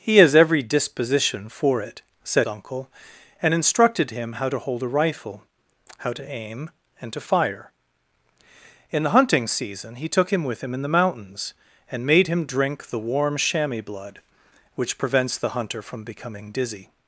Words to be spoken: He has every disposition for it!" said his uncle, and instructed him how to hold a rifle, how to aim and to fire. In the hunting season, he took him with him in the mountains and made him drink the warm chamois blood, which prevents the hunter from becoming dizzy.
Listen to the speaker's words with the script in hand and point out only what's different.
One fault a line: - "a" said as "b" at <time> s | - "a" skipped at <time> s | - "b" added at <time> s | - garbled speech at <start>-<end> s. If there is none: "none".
- "his" skipped at 2.5 s